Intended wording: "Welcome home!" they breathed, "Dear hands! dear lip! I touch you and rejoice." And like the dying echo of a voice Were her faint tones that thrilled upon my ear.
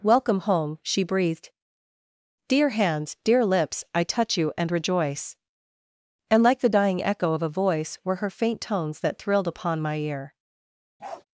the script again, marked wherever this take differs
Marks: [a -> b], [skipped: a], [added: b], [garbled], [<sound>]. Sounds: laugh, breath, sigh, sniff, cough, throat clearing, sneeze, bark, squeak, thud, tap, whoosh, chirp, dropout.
"Welcome home!" [they -> she] breathed, "Dear hands! dear [lip! -> lips] I touch you and rejoice." And like the dying echo of a voice Were her faint tones that thrilled upon my ear. [bark]